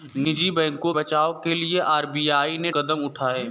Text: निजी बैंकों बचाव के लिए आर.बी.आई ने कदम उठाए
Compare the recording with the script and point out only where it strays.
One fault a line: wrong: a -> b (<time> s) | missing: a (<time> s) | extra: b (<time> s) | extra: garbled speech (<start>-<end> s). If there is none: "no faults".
no faults